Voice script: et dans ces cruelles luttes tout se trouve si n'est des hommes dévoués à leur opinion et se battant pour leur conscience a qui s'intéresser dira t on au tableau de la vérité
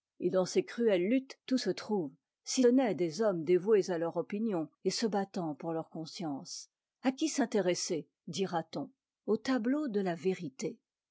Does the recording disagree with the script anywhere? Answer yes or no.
no